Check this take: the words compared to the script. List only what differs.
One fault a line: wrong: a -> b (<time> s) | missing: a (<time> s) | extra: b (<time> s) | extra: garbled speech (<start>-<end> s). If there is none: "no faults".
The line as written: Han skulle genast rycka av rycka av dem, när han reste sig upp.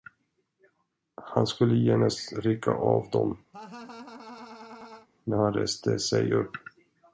missing: rycka av (3.1 s)